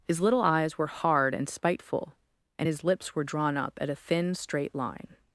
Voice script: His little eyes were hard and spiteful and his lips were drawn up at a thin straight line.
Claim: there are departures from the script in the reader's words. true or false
false